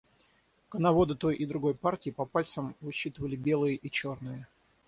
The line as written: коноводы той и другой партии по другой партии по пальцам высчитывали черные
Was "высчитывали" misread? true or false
true